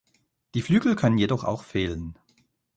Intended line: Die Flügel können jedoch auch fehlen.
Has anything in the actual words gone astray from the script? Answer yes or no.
no